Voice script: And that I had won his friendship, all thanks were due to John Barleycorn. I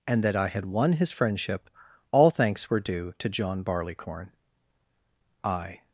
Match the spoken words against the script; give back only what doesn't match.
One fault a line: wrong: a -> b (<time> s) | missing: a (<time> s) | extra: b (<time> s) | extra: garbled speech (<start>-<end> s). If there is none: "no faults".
no faults